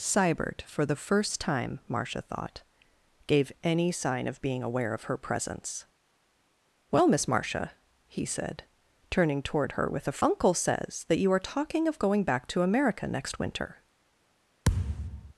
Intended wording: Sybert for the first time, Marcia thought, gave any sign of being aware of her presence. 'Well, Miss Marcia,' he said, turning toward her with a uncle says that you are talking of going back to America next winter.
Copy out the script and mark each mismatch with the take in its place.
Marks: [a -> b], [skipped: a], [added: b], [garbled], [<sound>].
Sybert for the first time, Marcia thought, gave any sign of being aware of her presence. 'Well, Miss Marcia,' he said, turning toward her with a uncle says that you are talking of going back to America next winter. [thud]